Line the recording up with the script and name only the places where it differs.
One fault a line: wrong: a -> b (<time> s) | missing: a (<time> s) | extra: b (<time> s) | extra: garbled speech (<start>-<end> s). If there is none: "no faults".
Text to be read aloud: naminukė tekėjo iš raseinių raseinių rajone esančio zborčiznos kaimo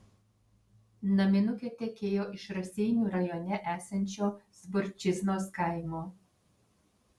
missing: raseinių (3.1 s)